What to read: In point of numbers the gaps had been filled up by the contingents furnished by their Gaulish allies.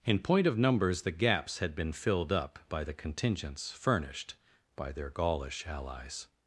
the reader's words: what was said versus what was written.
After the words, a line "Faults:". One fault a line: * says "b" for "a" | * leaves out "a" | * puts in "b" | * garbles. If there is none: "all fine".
In point of numbers the gaps had been filled up by the contingents furnished by their Gaulish allies.
Faults:
all fine